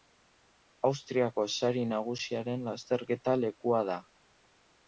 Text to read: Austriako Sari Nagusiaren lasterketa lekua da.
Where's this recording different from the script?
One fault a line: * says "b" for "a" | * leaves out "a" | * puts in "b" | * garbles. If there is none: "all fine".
all fine